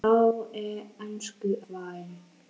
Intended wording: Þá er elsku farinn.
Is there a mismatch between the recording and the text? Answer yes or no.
no